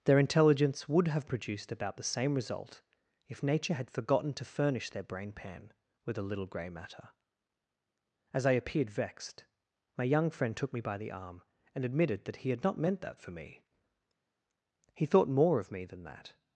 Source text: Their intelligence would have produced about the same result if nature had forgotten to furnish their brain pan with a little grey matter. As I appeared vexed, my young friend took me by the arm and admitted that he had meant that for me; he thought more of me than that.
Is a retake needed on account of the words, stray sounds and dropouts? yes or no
yes